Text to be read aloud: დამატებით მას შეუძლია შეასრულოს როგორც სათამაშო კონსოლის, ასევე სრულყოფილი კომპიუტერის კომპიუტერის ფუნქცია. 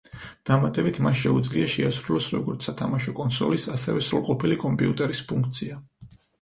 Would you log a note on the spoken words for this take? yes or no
yes